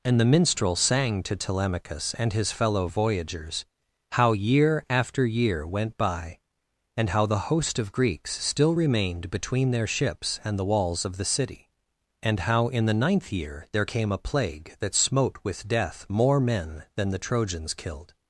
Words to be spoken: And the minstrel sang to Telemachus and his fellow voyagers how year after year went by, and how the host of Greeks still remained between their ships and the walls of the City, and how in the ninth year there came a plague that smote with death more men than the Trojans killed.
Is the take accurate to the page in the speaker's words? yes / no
yes